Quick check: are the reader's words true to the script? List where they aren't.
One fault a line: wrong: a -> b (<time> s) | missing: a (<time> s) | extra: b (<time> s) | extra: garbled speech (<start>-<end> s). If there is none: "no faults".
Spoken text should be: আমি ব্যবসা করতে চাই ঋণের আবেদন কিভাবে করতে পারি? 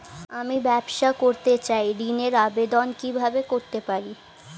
no faults